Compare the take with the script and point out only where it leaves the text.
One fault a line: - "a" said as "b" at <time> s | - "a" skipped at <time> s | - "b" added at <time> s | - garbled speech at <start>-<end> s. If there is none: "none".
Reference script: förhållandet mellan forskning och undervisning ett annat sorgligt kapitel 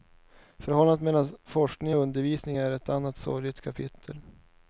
- "är" added at 2.6 s